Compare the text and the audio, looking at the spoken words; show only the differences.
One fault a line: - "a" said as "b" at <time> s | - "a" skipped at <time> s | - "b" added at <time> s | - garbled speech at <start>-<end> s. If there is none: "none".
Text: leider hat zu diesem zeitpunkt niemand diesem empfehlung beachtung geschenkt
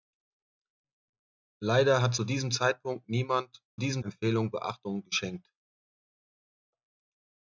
none